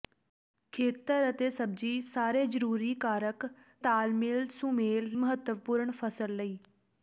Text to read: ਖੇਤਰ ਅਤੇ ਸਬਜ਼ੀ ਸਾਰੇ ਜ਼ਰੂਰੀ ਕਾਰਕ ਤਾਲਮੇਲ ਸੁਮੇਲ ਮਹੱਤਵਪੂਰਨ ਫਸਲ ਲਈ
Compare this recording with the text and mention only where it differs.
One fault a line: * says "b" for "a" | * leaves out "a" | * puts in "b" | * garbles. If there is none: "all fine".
all fine